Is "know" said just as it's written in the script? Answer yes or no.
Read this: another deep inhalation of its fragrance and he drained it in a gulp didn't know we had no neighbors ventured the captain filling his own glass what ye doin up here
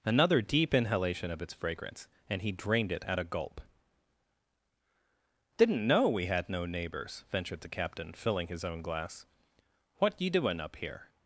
yes